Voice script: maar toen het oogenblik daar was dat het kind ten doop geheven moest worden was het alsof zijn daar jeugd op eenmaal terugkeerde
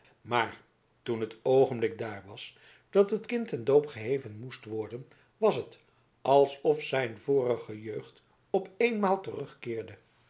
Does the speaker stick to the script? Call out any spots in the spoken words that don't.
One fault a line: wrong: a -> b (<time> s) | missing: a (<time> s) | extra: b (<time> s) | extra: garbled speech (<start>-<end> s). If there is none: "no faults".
wrong: daar -> vorige (7.2 s)